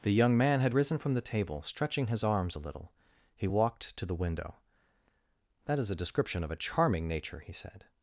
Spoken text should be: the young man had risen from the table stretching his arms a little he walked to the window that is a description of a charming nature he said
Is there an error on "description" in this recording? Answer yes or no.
no